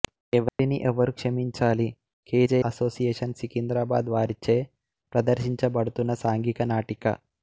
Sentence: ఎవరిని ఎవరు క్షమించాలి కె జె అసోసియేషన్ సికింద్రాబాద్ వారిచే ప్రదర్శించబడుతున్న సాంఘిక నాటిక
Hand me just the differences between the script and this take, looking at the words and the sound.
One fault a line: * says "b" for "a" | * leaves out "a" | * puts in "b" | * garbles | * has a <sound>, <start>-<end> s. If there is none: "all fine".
* has a dropout, 0.5-0.6 s